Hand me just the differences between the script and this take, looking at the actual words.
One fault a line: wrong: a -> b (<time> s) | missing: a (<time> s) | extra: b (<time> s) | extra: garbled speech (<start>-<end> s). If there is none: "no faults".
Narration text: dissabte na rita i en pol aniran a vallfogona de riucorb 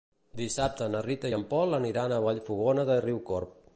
no faults